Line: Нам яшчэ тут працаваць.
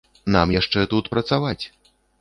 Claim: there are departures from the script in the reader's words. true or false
false